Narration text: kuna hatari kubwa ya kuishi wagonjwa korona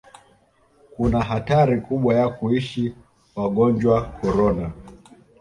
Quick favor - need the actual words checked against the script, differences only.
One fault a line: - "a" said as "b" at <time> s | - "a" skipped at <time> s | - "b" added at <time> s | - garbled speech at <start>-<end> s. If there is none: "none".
none